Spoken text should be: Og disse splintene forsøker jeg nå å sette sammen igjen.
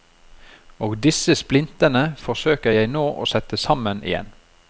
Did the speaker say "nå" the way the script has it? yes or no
yes